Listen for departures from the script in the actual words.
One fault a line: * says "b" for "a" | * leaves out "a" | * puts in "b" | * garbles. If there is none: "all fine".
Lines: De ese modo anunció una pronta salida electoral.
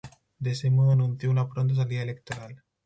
all fine